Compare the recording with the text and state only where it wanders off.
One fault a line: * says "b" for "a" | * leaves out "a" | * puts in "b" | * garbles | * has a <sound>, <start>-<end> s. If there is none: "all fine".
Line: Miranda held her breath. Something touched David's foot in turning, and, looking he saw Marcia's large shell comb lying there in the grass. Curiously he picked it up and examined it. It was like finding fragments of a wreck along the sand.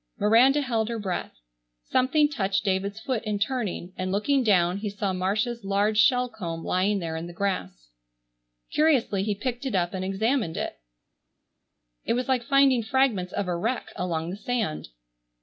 * puts in "down"